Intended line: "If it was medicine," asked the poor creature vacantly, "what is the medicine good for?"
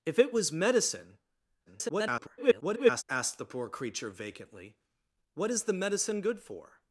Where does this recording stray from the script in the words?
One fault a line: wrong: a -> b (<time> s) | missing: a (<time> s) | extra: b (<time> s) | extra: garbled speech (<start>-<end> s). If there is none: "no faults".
extra: garbled speech (1.7-3.0 s)